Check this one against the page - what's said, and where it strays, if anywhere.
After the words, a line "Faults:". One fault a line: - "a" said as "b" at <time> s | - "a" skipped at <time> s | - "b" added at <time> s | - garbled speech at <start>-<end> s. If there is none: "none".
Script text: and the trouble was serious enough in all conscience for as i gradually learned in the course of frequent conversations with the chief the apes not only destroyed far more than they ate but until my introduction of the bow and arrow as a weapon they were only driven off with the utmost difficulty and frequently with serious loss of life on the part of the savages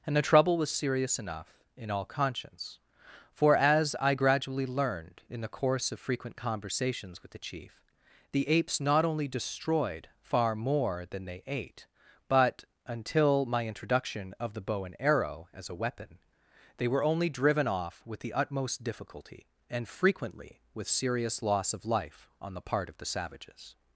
and the trouble was serious enough in all conscience for as i gradually learned in the course of frequent conversations with the chief the apes not only destroyed far more than they ate but until my introduction of the bow and arrow as a weapon they were only driven off with the utmost difficulty and frequently with serious loss of life on the part of the savages
Faults:
none